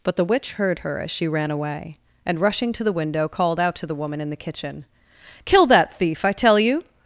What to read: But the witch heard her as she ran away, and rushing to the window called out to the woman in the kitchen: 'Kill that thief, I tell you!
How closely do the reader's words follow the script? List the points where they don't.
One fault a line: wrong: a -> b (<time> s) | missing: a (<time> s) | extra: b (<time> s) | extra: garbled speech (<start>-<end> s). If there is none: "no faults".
no faults